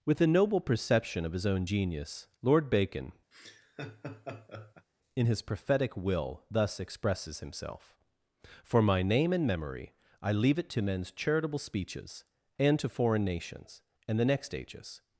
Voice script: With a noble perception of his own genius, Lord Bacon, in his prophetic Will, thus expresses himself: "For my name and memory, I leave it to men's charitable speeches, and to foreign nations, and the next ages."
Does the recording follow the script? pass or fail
pass